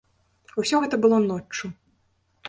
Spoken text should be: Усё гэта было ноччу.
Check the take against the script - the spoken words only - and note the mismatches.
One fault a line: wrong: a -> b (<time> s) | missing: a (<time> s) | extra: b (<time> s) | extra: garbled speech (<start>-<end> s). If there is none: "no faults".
no faults